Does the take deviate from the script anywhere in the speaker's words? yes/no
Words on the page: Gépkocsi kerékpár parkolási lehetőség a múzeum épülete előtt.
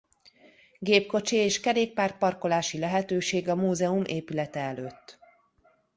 yes